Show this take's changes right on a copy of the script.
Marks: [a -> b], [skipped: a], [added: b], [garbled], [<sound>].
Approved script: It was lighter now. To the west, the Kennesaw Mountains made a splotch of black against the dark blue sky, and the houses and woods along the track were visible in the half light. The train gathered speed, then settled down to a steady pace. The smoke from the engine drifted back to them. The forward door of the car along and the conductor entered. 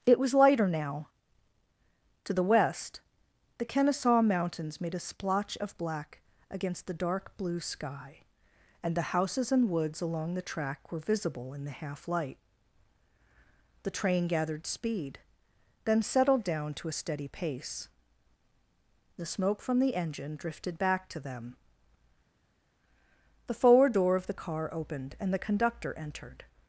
It was lighter now. To the west, the Kennesaw Mountains made a splotch of black against the dark blue sky, and the houses and woods along the track were visible in the half light. The train gathered speed, then settled down to a steady pace. The smoke from the engine drifted back to them. The forward door of the car [along -> opened] and the conductor entered.